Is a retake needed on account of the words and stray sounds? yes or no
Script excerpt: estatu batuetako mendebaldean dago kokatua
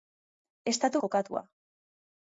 yes